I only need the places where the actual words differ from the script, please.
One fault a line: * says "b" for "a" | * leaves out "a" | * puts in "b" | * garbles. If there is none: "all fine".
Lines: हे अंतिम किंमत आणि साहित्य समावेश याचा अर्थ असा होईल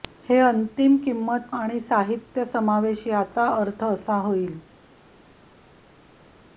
all fine